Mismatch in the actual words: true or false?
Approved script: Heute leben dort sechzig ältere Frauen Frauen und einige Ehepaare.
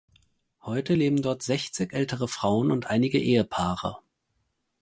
true